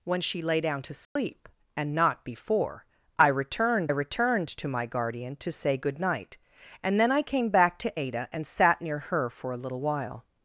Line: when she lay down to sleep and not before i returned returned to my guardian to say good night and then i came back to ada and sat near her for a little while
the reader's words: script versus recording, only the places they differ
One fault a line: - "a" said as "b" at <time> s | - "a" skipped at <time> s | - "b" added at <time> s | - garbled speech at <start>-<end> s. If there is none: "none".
none